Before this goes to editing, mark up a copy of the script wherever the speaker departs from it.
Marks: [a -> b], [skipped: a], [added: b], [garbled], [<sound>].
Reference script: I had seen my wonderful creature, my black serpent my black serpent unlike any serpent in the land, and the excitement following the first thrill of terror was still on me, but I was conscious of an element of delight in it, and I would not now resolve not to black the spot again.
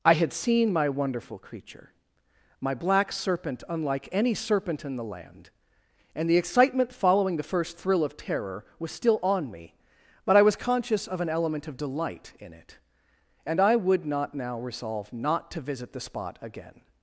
I had seen my wonderful creature, my black serpent [skipped: my black serpent] unlike any serpent in the land, and the excitement following the first thrill of terror was still on me, but I was conscious of an element of delight in it, and I would not now resolve not to [black -> visit] the spot again.